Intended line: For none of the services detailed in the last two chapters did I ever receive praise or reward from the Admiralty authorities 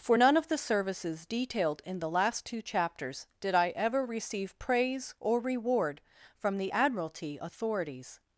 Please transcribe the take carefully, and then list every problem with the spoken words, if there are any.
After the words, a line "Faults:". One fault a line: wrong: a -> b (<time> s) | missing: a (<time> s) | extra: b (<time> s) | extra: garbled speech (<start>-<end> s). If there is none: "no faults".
For none of the services detailed in the last two chapters did I ever receive praise or reward from the Admiralty authorities
Faults:
no faults